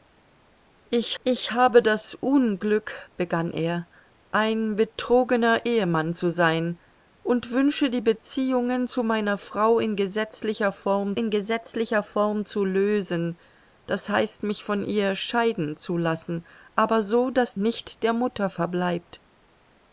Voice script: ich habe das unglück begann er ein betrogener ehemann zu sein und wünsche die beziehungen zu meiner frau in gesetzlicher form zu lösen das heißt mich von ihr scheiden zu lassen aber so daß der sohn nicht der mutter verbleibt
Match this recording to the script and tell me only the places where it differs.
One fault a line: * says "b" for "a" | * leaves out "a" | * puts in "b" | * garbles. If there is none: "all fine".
* puts in "ich"
* puts in "in gesetzlicher form"
* leaves out "der sohn"